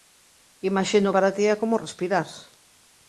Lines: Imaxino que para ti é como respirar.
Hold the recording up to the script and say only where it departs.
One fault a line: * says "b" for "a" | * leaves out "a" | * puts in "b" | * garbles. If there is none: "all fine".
* leaves out "que"